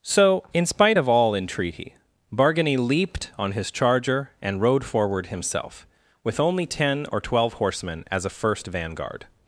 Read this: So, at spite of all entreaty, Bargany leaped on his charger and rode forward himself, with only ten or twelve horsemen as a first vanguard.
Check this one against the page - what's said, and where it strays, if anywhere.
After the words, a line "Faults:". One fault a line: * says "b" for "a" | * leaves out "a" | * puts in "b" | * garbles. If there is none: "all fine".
So, in spite of all entreaty, Bargany leaped on his charger and rode forward himself, with only ten or twelve horsemen as a first vanguard.
Faults:
* says "in" for "at"